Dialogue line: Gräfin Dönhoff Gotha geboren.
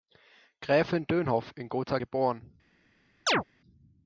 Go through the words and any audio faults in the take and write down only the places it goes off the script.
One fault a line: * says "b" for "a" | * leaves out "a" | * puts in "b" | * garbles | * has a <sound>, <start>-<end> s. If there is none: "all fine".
* puts in "in"
* has a chirp, 3.3-3.4 s